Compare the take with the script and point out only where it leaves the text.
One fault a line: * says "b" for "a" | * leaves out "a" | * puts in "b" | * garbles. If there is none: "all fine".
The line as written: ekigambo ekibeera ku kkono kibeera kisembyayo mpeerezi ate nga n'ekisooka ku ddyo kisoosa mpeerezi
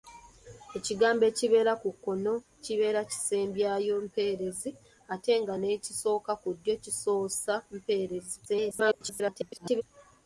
* garbles